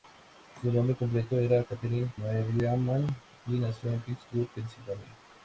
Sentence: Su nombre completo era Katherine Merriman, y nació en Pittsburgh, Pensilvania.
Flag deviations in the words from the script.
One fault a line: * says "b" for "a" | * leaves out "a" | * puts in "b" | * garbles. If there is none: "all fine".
all fine